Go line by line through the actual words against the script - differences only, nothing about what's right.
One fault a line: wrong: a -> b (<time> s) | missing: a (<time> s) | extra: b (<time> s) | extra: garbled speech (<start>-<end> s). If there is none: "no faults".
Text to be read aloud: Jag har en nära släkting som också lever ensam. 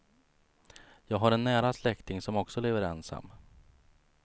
no faults